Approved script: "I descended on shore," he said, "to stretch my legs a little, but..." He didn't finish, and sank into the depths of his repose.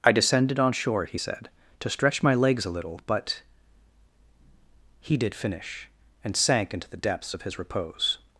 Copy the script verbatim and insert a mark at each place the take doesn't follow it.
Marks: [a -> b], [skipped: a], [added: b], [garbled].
"I descended on shore," he said, "to stretch my legs a little, but..." He [didn't -> did] finish, and sank into the depths of his repose.